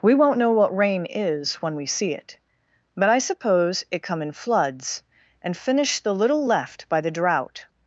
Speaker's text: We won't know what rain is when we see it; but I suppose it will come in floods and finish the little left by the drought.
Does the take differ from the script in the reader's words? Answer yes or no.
yes